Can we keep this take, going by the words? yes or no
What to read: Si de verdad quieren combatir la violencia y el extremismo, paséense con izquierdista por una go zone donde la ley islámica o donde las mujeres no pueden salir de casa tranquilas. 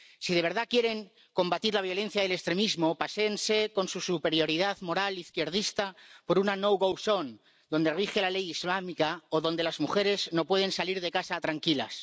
no